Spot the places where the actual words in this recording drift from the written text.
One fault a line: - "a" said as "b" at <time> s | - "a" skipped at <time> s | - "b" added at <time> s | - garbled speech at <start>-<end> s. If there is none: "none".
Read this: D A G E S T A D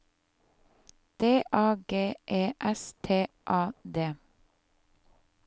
none